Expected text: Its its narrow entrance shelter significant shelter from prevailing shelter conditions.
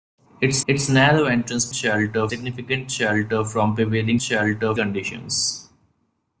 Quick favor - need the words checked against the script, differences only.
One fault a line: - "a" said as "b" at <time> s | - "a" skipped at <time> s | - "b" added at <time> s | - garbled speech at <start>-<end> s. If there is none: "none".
none